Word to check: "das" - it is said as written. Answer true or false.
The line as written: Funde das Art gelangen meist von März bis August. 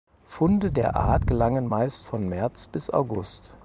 false